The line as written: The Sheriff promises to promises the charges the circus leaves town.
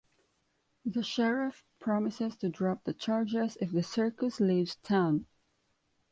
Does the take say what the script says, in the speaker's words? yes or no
no